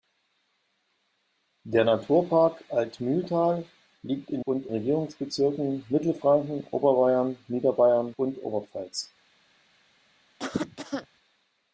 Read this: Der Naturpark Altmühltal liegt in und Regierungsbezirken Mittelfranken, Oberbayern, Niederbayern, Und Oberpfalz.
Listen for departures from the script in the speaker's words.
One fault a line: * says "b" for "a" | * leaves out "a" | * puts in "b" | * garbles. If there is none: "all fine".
all fine